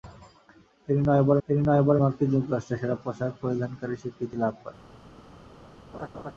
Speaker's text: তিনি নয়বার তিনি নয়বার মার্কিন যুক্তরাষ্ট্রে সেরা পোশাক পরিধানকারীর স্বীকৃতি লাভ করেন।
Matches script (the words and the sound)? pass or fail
fail